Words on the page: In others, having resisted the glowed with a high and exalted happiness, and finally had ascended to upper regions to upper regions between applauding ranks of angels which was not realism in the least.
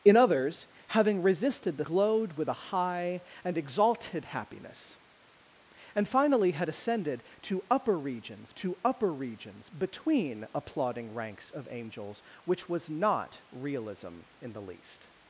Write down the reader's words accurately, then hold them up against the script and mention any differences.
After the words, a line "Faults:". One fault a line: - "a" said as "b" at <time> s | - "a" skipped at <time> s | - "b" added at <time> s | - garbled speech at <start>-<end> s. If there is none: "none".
In others, having resisted the glowed with a high and exalted happiness, and finally had ascended to upper regions to upper regions between applauding ranks of angels which was not realism in the least.
Faults:
none